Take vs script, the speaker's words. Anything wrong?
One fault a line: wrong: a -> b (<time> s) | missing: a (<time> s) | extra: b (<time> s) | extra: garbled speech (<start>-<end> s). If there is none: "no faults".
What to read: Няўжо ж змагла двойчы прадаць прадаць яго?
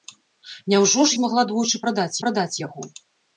no faults